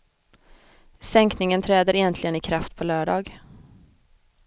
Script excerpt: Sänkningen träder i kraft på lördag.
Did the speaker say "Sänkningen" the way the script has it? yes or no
yes